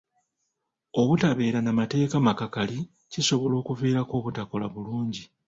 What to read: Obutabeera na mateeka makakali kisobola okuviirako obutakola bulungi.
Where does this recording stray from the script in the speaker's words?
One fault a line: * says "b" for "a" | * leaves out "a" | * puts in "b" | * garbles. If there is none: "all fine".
all fine